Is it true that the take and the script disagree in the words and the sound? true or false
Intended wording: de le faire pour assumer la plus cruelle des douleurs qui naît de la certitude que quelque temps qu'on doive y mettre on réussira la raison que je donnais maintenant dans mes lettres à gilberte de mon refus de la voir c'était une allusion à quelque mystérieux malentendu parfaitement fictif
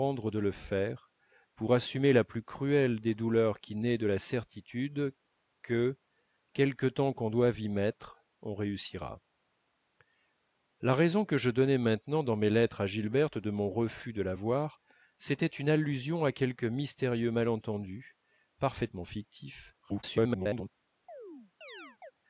true